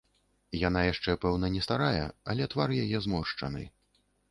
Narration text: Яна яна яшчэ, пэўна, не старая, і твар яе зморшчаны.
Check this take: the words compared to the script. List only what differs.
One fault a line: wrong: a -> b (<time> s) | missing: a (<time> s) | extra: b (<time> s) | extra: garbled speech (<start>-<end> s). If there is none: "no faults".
missing: яна (0.8 s)
wrong: і -> але (2.3 s)